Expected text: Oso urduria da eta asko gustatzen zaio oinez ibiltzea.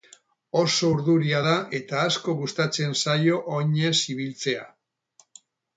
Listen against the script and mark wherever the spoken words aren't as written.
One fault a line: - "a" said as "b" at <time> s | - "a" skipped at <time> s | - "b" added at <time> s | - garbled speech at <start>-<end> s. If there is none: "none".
none